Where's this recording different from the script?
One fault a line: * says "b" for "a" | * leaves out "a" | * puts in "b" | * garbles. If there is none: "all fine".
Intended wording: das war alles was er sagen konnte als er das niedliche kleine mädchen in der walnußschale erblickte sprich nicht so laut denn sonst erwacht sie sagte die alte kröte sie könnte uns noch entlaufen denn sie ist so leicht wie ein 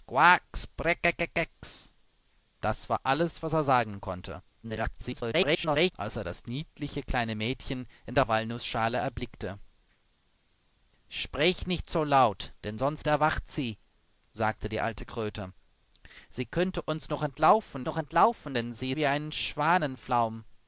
* garbles
* puts in "noch entlaufen"
* leaves out "ist so leicht"